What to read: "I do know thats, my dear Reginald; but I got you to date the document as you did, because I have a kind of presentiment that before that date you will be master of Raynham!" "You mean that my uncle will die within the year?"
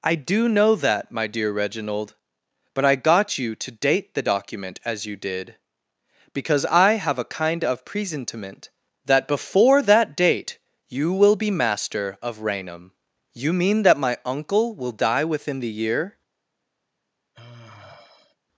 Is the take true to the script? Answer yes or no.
no